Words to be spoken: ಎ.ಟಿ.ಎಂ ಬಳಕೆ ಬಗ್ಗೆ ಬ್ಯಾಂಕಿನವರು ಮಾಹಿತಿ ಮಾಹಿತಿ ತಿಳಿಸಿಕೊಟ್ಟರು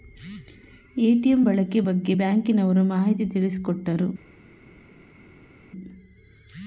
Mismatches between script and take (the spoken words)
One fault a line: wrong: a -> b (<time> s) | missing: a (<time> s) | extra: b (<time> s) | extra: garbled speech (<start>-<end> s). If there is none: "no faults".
missing: ಮಾಹಿತಿ (3.3 s)